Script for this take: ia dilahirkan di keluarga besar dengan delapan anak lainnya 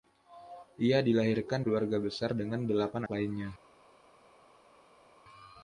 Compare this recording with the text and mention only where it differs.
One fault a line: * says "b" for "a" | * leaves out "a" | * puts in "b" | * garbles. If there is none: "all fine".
* leaves out "di"
* leaves out "anak"